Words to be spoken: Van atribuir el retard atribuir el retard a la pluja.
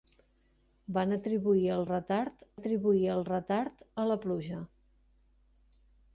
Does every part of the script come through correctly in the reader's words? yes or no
yes